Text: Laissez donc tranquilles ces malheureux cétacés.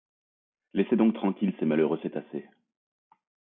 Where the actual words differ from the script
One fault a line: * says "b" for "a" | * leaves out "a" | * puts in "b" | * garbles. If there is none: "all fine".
all fine